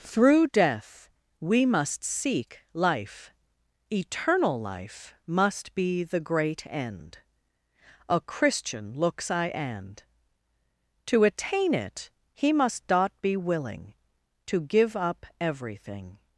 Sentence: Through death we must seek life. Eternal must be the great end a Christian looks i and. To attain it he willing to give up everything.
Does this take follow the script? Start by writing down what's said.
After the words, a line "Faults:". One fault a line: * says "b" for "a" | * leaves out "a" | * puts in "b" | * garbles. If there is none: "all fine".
Through death we must seek life. Eternal life must be the great end a Christian looks i and. To attain it he must dot be willing to give up everything.
Faults:
* puts in "life"
* puts in "must dot be"